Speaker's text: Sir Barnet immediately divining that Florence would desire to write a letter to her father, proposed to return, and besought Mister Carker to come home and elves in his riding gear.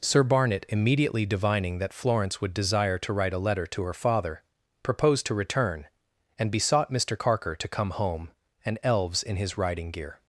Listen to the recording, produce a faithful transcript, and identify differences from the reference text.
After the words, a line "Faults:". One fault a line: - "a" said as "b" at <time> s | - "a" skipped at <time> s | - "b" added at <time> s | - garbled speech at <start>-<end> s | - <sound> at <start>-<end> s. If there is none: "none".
Sir Barnet immediately divining that Florence would desire to write a letter to her father, proposed to return, and besought Mister Carker to come home and elves in his riding gear.
Faults:
none